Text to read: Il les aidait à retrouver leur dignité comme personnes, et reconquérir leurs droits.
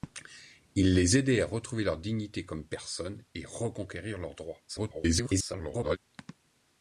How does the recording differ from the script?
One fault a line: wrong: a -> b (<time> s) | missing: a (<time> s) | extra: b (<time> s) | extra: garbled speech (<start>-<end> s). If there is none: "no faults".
extra: garbled speech (4.7-6.0 s)